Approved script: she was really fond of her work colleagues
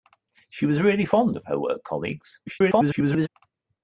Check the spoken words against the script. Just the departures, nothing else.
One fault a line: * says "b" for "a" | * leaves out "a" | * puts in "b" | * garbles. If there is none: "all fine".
* garbles